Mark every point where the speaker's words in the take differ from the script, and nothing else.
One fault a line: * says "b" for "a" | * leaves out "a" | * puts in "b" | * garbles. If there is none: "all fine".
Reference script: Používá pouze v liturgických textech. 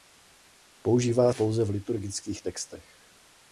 all fine